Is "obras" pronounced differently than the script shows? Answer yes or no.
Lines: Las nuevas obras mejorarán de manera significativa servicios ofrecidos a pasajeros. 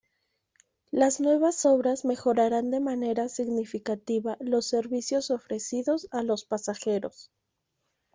no